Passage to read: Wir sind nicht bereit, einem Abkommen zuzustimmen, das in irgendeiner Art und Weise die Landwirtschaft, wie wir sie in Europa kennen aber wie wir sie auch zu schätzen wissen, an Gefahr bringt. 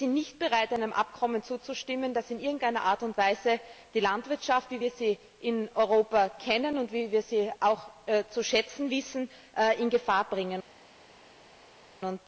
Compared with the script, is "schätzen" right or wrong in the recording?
right